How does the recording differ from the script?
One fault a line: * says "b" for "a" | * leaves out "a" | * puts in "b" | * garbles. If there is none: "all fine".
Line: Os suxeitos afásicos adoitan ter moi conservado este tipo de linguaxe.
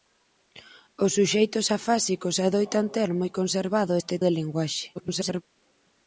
* leaves out "tipo"
* garbles